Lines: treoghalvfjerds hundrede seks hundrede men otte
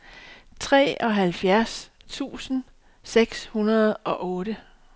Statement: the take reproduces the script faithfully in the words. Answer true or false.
false